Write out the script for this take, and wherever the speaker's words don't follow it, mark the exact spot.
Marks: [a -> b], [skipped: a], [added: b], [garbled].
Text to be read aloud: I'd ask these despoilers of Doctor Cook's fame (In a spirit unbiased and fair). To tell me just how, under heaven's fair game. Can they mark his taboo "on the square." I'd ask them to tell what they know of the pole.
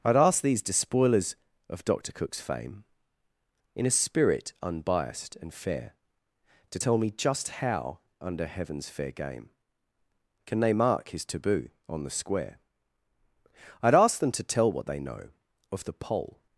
I'd ask these despoilers of Doctor Cook's fame (In a spirit unbiased and fair). To tell me just how, under heaven's fair game. Can they mark his taboo "on the square." I'd ask them to tell what they know of the pole.